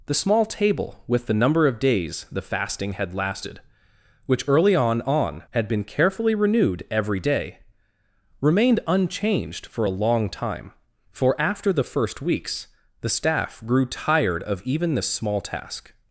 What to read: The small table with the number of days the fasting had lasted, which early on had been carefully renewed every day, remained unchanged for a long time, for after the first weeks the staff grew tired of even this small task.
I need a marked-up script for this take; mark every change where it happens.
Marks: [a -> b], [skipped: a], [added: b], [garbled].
The small table with the number of days the fasting had lasted, which early on [added: on] had been carefully renewed every day, remained unchanged for a long time, for after the first weeks the staff grew tired of even this small task.